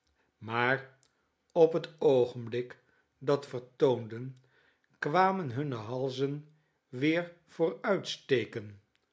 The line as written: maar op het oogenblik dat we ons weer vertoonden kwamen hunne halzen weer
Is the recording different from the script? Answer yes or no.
yes